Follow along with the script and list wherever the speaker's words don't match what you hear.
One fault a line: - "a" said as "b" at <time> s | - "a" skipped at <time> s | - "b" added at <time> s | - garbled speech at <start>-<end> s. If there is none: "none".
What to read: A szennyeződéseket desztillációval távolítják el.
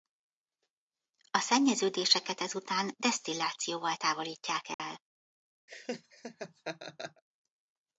- "ezután" added at 2.4 s